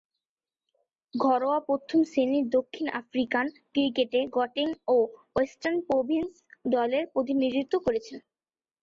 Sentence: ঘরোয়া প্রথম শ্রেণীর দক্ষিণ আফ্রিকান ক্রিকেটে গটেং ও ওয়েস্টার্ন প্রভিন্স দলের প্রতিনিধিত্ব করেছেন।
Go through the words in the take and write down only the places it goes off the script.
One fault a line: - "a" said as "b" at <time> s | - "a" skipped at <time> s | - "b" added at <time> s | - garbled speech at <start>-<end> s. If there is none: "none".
none